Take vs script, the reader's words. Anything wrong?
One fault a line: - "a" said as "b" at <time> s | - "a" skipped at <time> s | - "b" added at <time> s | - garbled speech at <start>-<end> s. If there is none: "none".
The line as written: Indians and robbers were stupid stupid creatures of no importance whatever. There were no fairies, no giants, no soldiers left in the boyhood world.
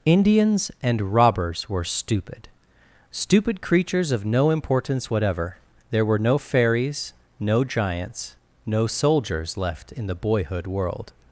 none